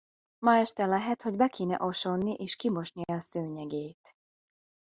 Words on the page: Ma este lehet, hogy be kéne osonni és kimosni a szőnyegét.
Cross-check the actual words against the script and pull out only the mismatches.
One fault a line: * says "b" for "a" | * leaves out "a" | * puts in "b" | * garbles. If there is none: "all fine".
all fine